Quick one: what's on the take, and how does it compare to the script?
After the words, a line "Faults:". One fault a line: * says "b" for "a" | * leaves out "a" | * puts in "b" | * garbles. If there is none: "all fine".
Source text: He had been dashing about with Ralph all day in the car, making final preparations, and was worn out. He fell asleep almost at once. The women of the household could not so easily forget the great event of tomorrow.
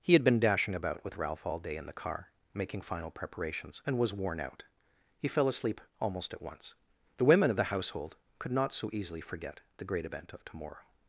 He had been dashing about with Ralph all day in the car, making final preparations, and was worn out. He fell asleep almost at once. The women of the household could not so easily forget the great event of tomorrow.
Faults:
all fine